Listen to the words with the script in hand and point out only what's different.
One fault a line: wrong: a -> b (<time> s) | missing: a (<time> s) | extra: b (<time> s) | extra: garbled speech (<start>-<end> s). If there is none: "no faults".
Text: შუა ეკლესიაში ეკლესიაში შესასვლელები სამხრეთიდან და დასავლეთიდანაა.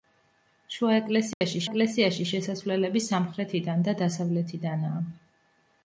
no faults